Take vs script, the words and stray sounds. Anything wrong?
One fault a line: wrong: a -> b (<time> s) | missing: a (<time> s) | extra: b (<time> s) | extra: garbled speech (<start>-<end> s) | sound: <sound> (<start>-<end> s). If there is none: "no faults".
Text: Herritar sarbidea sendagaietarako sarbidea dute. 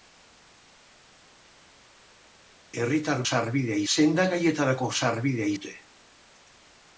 no faults